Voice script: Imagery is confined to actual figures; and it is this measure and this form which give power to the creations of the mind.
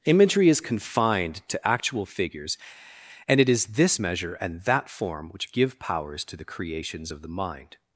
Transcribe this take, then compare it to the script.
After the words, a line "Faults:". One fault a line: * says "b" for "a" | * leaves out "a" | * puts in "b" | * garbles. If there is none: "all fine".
Imagery is confined to actual figures; and it is this measure and that form which give powers to the creations of the mind.
Faults:
* says "that" for "this"
* says "powers" for "power"